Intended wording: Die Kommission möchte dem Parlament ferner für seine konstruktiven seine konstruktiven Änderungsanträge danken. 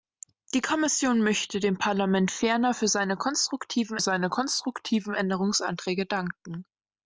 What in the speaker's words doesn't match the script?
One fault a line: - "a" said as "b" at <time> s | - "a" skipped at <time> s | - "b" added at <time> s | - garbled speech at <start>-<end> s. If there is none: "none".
none